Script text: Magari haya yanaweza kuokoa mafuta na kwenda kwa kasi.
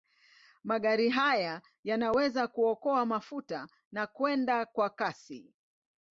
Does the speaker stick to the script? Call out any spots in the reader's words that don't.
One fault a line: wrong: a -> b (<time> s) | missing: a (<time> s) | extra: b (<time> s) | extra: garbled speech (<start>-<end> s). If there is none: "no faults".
no faults